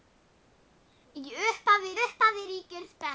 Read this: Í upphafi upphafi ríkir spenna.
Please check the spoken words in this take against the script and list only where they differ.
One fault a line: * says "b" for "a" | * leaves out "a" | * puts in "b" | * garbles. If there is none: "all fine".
all fine